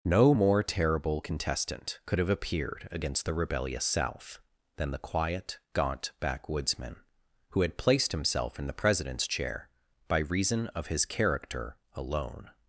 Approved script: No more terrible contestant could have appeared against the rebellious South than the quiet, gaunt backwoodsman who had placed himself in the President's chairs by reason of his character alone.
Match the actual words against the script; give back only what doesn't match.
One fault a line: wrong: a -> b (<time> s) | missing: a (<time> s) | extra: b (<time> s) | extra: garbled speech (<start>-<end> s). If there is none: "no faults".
wrong: chairs -> chair (9.3 s)